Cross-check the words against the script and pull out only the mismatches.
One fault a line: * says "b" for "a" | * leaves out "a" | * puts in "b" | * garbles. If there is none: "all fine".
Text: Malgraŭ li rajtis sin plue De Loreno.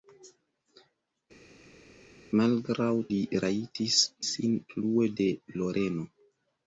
all fine